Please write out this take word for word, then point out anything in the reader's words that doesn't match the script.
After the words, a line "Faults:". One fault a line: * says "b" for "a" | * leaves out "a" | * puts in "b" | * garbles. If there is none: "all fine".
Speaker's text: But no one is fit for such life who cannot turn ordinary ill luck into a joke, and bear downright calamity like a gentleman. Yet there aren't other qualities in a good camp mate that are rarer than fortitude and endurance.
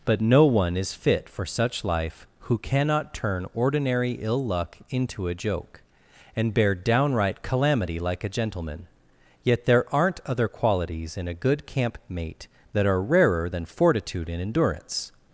But no one is fit for such life who cannot turn ordinary ill luck into a joke, and bear downright calamity like a gentleman. Yet there aren't other qualities in a good camp mate that are rarer than fortitude and endurance.
Faults:
all fine